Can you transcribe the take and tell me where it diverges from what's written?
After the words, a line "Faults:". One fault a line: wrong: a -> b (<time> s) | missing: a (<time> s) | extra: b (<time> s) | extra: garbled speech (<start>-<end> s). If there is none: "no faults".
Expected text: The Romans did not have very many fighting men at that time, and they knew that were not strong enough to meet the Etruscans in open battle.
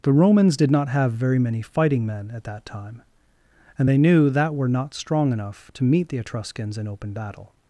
The Romans did not have very many fighting men at that time, and they knew that were not strong enough to meet the Etruscans in open battle.
Faults:
no faults